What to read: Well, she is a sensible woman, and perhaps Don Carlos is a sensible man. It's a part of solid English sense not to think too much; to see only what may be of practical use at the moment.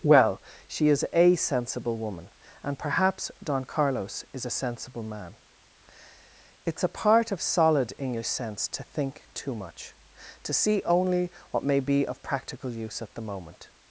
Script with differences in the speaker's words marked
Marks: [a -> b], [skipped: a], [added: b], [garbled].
Well, she is a sensible woman, and perhaps Don Carlos is a sensible man. It's a part of solid English sense [skipped: not] to think too much; to see only what may be of practical use at the moment.